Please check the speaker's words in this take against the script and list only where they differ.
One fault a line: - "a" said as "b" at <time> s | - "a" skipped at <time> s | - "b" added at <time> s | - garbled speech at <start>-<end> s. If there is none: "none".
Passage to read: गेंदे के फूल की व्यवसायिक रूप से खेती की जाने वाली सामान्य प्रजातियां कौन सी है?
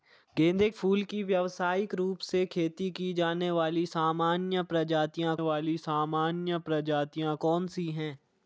- "के" skipped at 0.7 s
- "वाली सामान्य प्रजातियां" added at 5.4 s